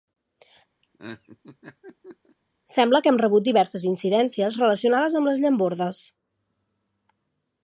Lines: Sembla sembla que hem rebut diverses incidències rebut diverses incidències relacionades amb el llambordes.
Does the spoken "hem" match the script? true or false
true